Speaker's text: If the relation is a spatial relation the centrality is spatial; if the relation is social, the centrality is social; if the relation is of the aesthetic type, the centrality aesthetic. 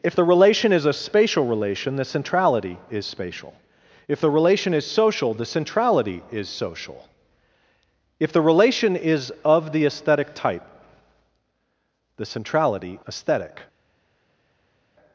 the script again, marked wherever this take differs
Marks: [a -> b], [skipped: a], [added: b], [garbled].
If the relation is a spatial relation the centrality is spatial; if the relation is social, the centrality is social; if the relation is of the aesthetic type, the centrality aesthetic.